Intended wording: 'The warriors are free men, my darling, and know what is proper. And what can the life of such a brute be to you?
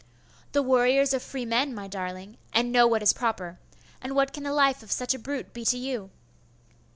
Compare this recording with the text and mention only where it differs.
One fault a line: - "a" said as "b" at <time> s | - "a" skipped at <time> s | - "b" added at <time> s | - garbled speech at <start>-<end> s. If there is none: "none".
none